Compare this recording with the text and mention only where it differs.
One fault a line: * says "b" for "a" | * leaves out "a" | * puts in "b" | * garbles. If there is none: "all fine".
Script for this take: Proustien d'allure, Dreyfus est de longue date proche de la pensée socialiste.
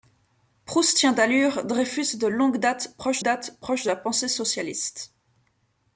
* puts in "date proche"